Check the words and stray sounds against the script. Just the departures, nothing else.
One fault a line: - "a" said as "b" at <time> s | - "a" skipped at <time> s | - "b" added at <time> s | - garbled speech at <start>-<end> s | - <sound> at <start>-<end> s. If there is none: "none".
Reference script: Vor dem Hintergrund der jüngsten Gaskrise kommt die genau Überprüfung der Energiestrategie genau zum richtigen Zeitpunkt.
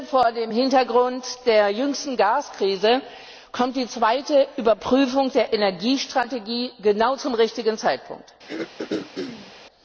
- "genau" said as "zweite" at 3.9 s
- throat clearing at 8.5-9.5 s